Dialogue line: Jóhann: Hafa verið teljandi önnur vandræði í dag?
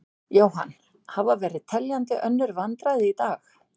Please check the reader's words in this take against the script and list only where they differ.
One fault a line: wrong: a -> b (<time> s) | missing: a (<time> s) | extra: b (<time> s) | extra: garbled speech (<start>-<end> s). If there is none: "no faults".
no faults